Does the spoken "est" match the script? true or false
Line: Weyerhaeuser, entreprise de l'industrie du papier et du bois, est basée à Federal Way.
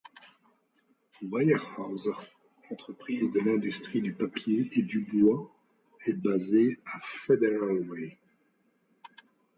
true